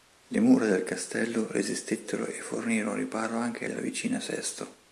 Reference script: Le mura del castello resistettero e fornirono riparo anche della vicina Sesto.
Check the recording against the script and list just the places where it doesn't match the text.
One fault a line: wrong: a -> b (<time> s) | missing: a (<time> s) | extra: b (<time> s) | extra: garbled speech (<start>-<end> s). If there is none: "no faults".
no faults